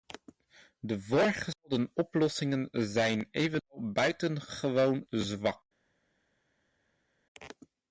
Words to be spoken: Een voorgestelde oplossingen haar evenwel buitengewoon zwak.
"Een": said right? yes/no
no